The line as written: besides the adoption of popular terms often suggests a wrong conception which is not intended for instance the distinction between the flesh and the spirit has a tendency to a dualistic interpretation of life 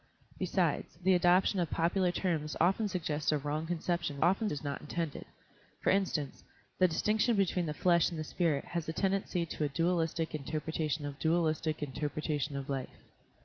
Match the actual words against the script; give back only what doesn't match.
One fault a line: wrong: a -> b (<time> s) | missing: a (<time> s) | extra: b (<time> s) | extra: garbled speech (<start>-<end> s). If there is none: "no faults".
wrong: which -> often (4.2 s)
extra: dualistic interpretation of (11.1 s)